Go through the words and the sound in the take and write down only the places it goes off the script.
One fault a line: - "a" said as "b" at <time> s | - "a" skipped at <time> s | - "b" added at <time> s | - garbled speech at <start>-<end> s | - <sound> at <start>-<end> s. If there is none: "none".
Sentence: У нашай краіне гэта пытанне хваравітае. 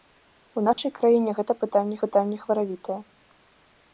- dropout at 0.7-0.8 s
- "пытанне" added at 2.1 s